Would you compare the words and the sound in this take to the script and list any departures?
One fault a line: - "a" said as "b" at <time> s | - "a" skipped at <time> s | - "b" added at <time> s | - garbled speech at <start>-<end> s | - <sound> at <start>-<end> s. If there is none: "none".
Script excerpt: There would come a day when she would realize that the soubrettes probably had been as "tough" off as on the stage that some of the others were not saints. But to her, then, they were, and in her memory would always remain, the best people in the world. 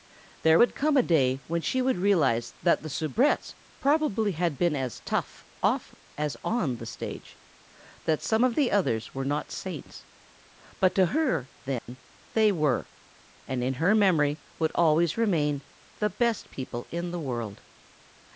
- dropout at 11.8-11.9 s